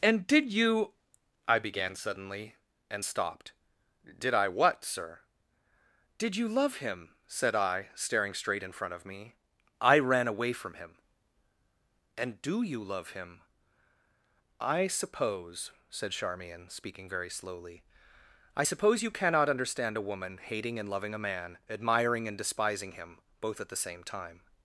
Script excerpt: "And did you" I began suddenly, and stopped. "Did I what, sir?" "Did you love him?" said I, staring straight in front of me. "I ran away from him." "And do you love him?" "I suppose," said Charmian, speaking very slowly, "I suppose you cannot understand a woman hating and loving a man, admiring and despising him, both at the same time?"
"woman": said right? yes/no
yes